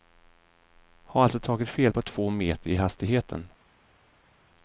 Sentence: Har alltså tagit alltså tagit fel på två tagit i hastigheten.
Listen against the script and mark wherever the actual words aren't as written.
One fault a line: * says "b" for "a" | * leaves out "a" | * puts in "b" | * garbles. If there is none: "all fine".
* leaves out "alltså tagit"
* says "meter" for "tagit"